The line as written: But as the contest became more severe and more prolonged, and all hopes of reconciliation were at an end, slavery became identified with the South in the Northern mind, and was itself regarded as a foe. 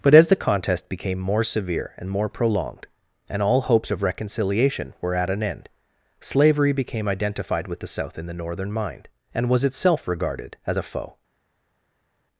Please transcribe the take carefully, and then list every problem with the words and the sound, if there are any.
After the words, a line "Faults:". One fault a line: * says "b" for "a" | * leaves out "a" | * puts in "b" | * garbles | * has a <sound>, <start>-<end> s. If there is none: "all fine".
But as the contest became more severe and more prolonged, and all hopes of reconciliation were at an end, slavery became identified with the South in the Northern mind, and was itself regarded as a foe.
Faults:
all fine